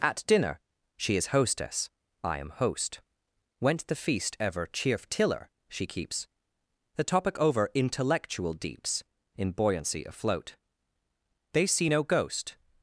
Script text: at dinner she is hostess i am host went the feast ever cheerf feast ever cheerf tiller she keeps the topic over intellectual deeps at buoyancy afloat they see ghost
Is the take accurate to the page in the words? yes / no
no